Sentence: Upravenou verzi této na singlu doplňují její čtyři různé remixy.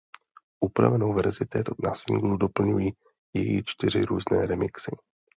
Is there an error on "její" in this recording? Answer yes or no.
no